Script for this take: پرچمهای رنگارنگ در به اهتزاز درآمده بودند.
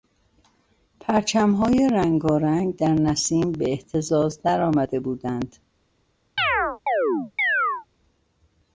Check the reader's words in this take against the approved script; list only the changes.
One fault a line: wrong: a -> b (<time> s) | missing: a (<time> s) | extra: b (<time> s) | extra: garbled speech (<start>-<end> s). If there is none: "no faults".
extra: نسیم (2.9 s)